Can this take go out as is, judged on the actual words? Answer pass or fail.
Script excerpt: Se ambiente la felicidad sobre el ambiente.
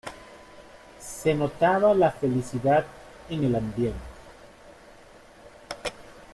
fail